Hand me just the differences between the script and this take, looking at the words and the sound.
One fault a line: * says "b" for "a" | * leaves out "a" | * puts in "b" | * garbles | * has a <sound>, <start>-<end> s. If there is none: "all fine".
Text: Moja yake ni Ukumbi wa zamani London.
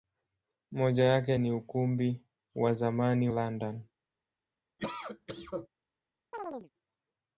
* has a cough, 4.8-5.7 s
* has a chirp, 6.3-6.7 s